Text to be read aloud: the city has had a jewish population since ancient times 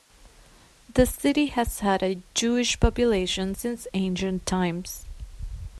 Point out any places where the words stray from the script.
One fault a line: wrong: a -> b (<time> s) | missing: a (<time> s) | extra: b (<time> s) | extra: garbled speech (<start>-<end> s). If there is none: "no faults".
no faults